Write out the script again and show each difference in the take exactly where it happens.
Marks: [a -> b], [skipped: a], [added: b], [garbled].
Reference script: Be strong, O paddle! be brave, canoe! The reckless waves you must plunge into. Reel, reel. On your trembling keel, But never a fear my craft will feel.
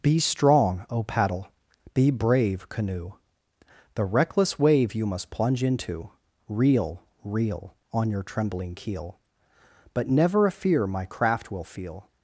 Be strong, O paddle! be brave, canoe! The reckless [waves -> wave] you must plunge into. Reel, reel. On your trembling keel, But never a fear my craft will feel.